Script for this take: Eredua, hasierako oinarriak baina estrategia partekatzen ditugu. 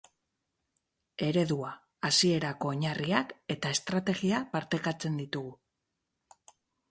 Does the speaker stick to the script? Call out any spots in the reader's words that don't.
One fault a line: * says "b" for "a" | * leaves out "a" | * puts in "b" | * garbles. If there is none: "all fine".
* says "eta" for "baina"